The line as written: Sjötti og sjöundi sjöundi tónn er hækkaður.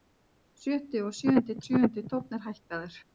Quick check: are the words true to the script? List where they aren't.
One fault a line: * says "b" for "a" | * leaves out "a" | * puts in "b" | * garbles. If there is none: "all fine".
all fine